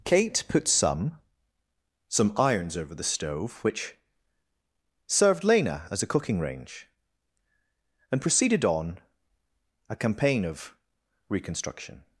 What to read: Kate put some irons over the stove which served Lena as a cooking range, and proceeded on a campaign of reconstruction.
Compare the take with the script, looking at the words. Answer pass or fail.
fail